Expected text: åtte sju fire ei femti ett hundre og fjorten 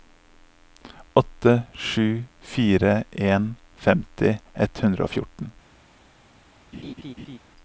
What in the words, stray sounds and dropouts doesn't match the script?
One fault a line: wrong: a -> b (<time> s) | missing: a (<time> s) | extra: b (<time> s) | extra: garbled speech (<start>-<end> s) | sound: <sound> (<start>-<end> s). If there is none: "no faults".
wrong: ei -> en (3.1 s)
sound: laugh (6.7-7.4 s)